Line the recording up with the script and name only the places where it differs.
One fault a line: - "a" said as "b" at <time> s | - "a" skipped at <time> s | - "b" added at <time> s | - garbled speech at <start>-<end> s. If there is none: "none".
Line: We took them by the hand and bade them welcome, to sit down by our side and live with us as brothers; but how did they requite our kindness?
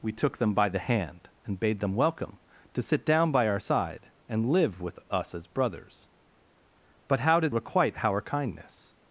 - "they" skipped at 7.5 s